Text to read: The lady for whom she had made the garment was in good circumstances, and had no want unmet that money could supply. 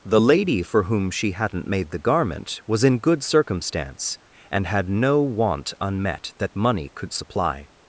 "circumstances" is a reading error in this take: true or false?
true